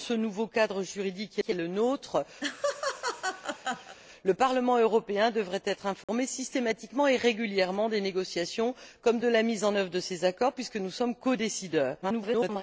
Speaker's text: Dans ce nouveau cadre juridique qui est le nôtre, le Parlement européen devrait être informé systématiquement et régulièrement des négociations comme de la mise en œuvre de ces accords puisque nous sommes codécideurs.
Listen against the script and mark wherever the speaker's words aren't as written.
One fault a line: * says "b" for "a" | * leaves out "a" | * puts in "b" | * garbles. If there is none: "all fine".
* puts in "qui"
* garbles